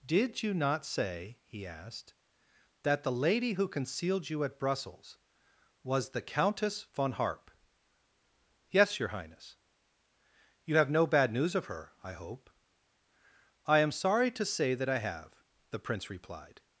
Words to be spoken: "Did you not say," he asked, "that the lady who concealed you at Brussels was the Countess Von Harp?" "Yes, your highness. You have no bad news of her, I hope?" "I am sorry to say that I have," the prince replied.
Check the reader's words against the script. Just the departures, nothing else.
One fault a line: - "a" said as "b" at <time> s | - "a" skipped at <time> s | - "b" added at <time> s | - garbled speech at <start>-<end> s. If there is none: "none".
none